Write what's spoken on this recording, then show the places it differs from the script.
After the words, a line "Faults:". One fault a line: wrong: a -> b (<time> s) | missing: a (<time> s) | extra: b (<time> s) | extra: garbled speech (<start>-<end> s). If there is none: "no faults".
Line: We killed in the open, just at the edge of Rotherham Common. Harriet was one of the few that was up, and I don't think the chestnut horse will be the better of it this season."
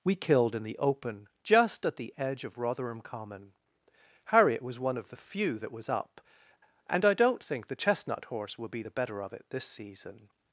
We killed in the open, just at the edge of Rotherham Common. Harriet was one of the few that was up, and I don't think the chestnut horse will be the better of it this season."
Faults:
no faults